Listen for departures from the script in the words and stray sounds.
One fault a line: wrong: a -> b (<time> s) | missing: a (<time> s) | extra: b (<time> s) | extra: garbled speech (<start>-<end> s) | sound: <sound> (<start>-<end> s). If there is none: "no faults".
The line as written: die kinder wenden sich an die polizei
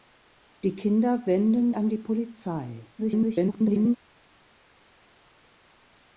missing: sich (1.7 s)
extra: garbled speech (3.0-4.0 s)